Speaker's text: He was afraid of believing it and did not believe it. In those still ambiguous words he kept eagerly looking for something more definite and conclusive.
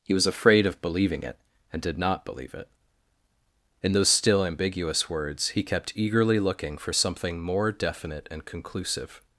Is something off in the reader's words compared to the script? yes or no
no